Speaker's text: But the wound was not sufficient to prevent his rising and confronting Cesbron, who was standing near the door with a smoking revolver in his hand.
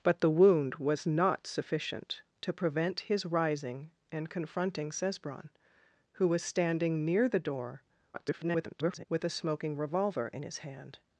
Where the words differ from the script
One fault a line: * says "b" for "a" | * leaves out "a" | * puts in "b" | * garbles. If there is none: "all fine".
* garbles